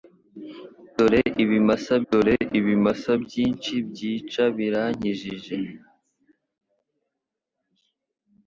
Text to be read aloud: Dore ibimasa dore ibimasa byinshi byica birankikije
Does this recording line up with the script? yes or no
yes